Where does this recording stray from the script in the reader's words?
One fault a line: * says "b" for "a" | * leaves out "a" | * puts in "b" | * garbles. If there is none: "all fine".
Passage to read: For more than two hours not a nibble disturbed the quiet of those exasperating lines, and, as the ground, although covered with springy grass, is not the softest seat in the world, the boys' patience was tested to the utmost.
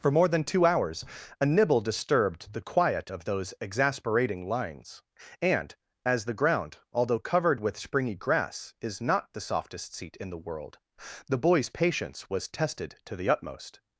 * leaves out "not"